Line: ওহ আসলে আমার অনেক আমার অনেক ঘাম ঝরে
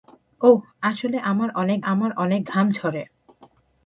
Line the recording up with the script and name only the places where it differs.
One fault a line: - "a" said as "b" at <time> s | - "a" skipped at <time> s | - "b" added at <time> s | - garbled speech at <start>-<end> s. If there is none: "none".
none